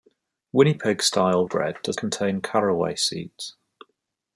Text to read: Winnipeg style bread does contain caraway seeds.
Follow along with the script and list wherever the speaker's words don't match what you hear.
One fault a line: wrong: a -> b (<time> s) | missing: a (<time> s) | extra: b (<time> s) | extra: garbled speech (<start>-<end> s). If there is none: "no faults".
no faults